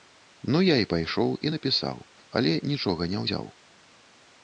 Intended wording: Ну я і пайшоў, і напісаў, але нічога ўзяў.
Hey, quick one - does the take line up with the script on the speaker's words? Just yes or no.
no